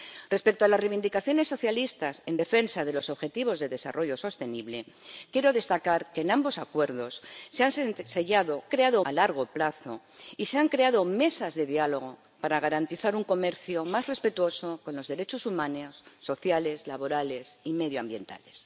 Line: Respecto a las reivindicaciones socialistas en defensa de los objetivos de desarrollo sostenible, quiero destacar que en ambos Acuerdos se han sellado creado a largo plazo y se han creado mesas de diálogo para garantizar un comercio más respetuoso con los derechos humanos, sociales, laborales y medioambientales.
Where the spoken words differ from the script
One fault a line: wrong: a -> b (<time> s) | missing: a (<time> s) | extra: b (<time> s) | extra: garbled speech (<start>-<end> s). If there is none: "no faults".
no faults